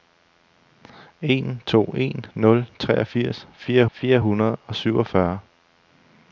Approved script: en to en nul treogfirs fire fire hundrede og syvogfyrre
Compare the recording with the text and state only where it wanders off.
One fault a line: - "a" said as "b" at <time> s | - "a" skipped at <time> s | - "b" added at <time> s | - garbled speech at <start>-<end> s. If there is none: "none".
none